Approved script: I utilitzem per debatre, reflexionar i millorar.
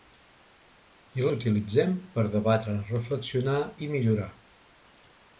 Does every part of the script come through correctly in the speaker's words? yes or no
yes